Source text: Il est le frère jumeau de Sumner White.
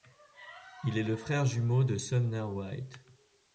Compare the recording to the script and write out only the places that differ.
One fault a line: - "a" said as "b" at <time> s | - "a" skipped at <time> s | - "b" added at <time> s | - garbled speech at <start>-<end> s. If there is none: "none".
none